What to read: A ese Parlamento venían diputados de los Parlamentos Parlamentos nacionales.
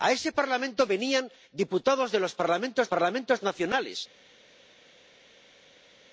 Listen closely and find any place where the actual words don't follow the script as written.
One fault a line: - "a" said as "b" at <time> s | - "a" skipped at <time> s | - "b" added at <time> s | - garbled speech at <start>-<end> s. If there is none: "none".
none